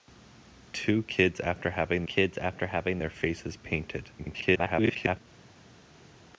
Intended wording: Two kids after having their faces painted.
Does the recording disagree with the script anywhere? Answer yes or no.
yes